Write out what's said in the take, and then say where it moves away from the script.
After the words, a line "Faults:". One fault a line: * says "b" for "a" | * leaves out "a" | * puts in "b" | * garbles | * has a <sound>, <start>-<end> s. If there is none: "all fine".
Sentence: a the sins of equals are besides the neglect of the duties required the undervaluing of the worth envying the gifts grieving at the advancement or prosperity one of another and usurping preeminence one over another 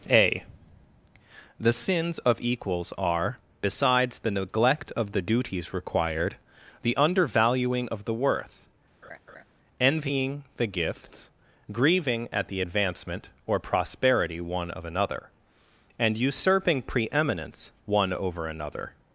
a the sins of equals are besides the neglect of the duties required the undervaluing of the worth envying the gifts grieving at the advancement or prosperity one of another and usurping preeminence one over another
Faults:
* has a laugh, 9.0-9.4 s